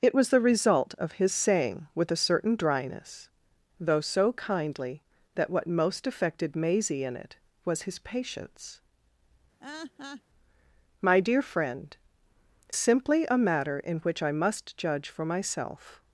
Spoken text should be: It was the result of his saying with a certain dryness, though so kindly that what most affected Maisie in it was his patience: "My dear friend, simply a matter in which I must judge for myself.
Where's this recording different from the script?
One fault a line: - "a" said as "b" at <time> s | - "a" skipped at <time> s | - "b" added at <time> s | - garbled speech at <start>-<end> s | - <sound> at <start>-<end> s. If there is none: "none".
- laugh at 9.6-10.2 s